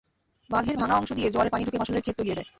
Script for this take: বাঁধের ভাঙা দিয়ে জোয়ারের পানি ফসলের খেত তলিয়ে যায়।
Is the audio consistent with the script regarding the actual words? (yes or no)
no